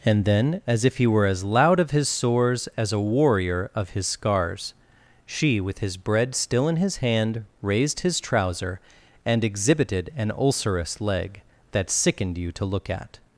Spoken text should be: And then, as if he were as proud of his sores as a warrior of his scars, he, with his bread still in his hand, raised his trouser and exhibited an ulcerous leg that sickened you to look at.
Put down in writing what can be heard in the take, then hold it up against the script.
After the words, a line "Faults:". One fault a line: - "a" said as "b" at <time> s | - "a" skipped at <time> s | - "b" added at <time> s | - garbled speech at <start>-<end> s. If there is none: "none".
And then, as if he were as loud of his sores as a warrior of his scars, she, with his bread still in his hand, raised his trouser and exhibited an ulcerous leg that sickened you to look at.
Faults:
- "proud" said as "loud" at 1.4 s
- "he" said as "she" at 5.2 s